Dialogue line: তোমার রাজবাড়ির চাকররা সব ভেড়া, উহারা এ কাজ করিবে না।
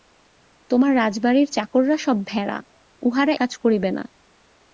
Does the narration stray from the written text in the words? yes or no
yes